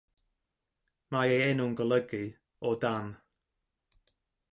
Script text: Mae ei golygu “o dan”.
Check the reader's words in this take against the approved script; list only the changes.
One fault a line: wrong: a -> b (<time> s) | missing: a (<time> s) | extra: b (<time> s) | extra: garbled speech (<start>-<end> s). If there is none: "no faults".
extra: enw'n (1.5 s)